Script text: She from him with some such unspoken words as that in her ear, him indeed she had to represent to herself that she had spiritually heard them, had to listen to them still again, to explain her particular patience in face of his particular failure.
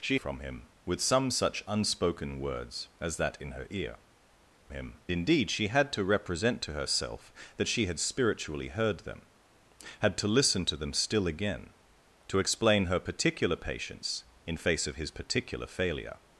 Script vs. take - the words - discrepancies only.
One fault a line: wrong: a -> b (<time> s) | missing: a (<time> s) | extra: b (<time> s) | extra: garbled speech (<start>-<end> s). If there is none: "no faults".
no faults